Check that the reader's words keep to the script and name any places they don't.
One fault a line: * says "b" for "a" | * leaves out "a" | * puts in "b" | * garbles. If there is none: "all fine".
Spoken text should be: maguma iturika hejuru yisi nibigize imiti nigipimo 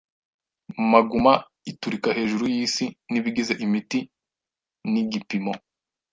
all fine